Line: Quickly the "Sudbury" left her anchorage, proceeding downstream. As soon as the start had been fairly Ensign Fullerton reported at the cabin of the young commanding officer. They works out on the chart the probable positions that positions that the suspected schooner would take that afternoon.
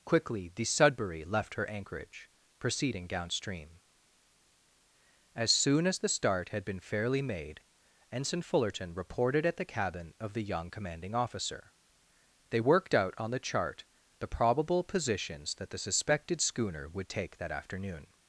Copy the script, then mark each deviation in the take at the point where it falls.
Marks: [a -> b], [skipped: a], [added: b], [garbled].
Quickly the "Sudbury" left her anchorage, proceeding downstream. As soon as the start had been fairly [added: made] Ensign Fullerton reported at the cabin of the young commanding officer. They [works -> worked] out on the chart the probable positions that [skipped: positions that] the suspected schooner would take that afternoon.